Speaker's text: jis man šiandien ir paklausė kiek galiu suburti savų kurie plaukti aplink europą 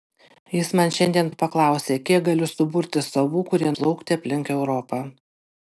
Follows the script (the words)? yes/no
yes